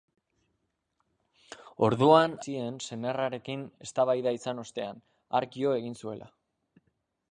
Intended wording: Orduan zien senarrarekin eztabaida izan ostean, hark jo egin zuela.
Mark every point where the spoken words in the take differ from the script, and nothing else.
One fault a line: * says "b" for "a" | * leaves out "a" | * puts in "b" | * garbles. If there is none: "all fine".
all fine